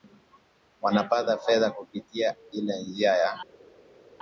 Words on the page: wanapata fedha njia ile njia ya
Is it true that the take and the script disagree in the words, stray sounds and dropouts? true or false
true